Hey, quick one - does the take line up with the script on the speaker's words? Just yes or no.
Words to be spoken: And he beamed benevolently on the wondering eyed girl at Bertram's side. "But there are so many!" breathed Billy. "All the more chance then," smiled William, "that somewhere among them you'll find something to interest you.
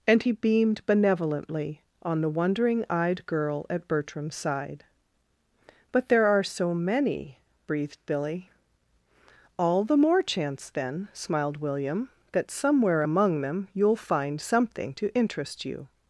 yes